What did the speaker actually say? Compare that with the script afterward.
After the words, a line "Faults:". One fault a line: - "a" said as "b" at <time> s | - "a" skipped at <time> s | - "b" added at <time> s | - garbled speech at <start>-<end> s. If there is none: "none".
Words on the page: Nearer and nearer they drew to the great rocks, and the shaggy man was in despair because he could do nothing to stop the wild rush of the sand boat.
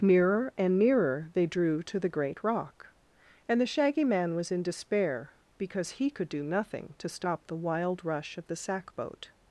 Nearer and nearer they drew to the great rock, and the shaggy man was in despair because he could do nothing to stop the wild rush of the sack boat.
Faults:
- "rocks" said as "rock" at 2.4 s
- "sand" said as "sack" at 8.6 s